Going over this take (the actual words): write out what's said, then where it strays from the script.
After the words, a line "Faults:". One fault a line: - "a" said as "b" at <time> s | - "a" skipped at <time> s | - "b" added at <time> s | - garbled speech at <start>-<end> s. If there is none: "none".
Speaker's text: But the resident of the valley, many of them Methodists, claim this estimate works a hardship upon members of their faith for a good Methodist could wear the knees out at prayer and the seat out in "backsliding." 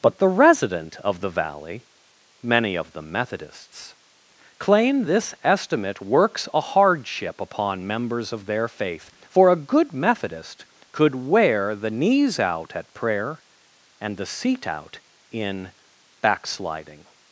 But the resident of the valley, many of them Methodists, claim this estimate works a hardship upon members of their faith for a good Methodist could wear the knees out at prayer and the seat out in "backsliding."
Faults:
none